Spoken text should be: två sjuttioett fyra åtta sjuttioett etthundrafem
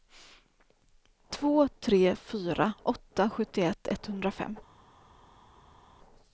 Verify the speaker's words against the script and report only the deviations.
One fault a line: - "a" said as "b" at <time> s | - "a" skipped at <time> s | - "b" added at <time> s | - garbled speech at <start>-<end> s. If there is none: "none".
- "sjuttioett" said as "tre" at 1.8 s